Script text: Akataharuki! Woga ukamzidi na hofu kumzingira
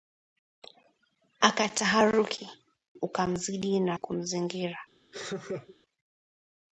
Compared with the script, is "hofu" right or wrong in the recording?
wrong